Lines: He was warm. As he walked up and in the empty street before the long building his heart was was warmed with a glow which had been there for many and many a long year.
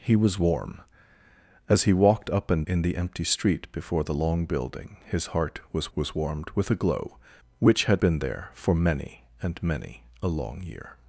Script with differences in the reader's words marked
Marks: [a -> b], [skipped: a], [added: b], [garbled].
He was warm. As he walked up and in the empty street before the long building his heart was was warmed with a glow which had been there for many and many a long year.